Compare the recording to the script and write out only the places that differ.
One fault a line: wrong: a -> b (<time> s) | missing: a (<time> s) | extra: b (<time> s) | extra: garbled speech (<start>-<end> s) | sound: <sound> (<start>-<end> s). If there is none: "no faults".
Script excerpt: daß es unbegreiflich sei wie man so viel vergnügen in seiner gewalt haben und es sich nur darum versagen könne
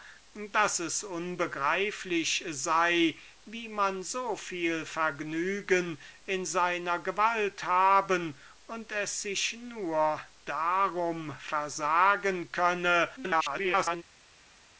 extra: garbled speech (13.2-14.0 s)